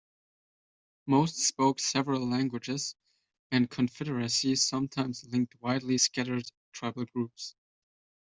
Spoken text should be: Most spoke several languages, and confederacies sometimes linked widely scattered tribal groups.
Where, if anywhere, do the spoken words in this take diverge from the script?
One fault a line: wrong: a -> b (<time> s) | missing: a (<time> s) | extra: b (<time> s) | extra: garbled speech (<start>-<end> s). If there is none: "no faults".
no faults